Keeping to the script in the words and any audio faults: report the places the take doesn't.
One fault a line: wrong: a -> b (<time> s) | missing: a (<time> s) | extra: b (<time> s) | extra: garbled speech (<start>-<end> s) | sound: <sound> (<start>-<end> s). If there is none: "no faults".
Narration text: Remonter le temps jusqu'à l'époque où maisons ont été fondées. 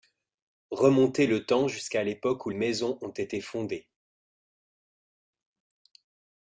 no faults